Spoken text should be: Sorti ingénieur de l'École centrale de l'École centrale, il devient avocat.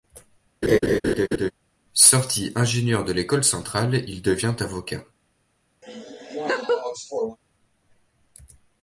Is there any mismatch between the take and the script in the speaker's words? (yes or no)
yes